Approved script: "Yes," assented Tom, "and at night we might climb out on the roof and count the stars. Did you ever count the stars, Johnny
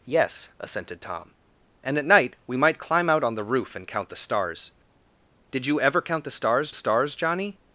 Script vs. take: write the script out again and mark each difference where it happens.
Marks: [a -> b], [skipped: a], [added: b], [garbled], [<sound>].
"Yes," assented Tom, "and at night we might climb out on the roof and count the stars. Did you ever count the stars, [added: stars] Johnny